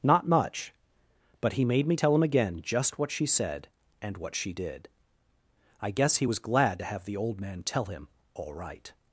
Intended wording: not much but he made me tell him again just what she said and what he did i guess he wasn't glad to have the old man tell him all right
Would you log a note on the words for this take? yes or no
yes